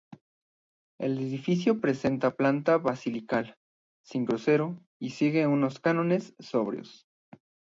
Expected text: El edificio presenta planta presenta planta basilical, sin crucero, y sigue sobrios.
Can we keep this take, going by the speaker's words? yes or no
no